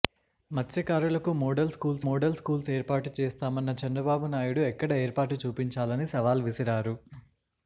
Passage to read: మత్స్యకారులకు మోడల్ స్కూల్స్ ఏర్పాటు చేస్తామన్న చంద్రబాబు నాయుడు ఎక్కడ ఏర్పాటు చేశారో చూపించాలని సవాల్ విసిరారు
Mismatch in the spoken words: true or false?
true